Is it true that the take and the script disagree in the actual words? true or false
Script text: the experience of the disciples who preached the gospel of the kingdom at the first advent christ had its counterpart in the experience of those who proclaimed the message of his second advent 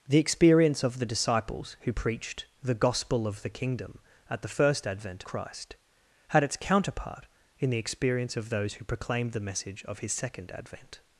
false